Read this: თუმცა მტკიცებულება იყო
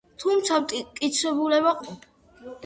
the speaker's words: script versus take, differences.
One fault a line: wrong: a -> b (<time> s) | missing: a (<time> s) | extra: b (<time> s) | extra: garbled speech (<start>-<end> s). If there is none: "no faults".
no faults